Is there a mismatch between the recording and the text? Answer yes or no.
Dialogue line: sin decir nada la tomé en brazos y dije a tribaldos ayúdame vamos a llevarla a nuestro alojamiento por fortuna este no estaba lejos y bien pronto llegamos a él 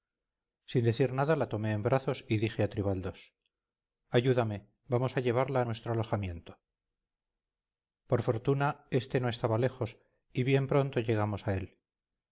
no